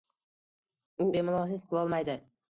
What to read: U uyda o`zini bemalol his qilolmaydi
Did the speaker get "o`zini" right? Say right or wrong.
wrong